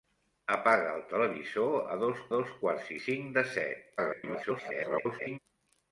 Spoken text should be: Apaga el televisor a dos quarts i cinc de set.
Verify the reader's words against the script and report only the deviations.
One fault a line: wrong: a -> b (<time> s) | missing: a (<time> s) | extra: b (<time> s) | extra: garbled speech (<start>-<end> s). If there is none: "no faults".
extra: dos (2.4 s)
extra: garbled speech (4.0-5.4 s)